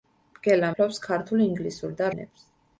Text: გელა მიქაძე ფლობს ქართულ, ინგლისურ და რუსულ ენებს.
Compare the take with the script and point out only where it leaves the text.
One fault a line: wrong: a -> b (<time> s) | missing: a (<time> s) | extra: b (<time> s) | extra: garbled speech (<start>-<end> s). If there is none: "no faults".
missing: მიქაძე (0.7 s)
missing: რუსულ (2.1 s)